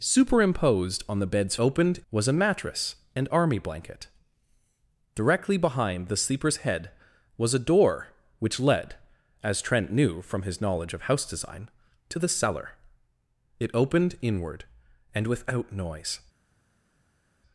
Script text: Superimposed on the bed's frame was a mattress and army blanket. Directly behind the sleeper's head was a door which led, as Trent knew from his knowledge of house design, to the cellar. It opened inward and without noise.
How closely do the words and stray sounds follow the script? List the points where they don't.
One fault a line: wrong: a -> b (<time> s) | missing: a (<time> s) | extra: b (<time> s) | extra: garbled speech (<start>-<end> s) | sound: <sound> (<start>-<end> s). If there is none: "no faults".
wrong: frame -> opened (1.6 s)